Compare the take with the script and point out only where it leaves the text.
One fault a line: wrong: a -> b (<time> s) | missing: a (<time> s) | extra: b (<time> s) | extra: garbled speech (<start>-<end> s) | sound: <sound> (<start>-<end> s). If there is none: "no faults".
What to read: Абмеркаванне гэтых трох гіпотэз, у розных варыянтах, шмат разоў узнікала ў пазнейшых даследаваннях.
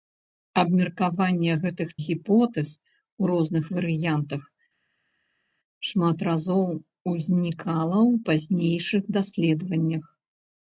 missing: трох (1.9 s)